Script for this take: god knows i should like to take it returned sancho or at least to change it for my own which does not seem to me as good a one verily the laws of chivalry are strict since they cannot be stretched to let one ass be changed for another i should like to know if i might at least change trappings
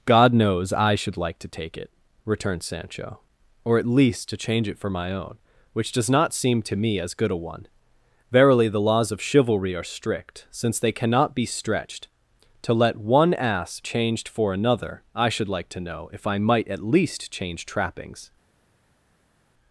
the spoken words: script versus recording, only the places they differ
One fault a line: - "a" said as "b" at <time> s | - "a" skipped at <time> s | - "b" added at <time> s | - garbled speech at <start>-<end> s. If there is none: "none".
- "be" skipped at 13.8 s